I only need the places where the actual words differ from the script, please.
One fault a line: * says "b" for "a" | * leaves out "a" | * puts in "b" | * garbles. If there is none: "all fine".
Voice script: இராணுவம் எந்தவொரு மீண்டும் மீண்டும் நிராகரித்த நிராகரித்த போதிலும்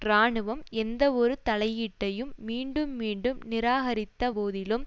* puts in "தலையீட்டையும்"
* leaves out "நிராகரித்த"